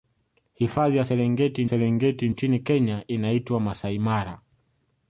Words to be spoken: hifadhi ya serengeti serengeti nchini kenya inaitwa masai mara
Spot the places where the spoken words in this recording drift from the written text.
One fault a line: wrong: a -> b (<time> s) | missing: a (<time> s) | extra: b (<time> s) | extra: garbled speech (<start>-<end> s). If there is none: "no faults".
no faults